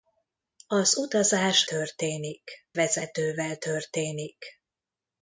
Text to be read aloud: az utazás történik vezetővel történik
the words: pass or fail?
pass